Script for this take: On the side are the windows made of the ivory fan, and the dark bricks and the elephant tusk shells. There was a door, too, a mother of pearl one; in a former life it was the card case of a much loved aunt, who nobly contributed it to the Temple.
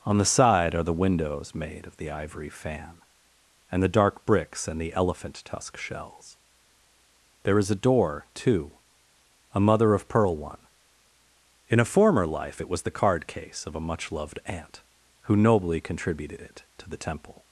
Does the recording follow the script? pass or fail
fail